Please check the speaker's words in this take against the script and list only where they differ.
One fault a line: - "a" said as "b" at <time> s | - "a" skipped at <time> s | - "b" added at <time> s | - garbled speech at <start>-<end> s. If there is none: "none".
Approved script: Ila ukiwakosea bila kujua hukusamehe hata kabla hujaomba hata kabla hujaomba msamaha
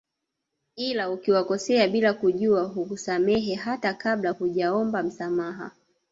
- "hata kabla hujaomba" skipped at 5.0 s